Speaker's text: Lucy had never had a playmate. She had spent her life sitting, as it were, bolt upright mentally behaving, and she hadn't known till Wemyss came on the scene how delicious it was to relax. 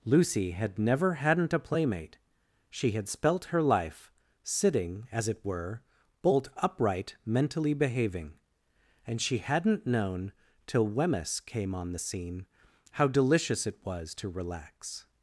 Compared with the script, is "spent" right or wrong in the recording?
wrong